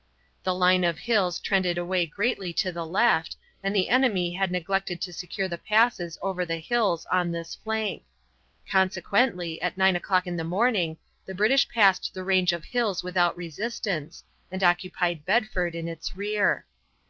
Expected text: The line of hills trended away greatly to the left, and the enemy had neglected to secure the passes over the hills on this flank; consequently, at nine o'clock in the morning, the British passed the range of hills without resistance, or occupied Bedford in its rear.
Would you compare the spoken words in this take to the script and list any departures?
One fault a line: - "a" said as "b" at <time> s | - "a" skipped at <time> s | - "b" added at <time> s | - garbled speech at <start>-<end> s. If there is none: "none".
- "or" said as "and" at 14.5 s